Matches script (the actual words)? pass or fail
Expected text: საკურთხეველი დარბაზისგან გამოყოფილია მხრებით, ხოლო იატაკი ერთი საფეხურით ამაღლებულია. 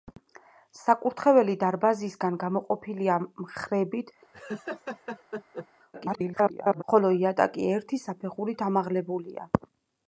fail